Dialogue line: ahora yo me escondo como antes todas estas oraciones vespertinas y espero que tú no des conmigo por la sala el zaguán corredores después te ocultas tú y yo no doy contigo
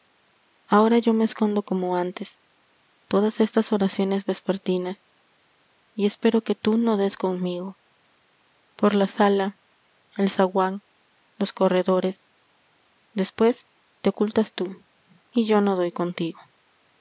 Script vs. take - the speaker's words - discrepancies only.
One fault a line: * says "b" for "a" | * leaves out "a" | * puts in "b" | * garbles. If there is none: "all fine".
* puts in "los"